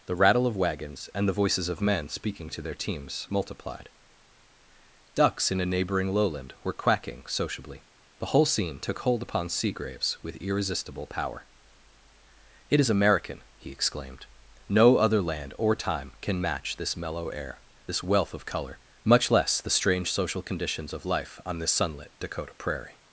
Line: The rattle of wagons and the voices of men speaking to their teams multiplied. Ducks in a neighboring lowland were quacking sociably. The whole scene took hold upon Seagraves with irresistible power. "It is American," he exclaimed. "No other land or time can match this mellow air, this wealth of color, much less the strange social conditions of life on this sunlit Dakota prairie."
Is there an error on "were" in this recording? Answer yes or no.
no